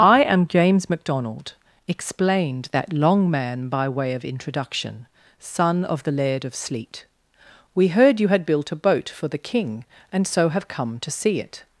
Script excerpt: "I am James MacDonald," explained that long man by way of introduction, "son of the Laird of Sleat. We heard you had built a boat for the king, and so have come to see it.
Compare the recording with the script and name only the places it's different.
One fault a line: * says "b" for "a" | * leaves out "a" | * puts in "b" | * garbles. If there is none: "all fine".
all fine